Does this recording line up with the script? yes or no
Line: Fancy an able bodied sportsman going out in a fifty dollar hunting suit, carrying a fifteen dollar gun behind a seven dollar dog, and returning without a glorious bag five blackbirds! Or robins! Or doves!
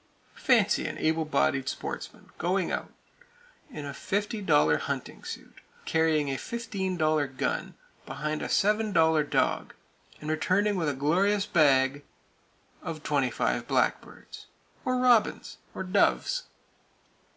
no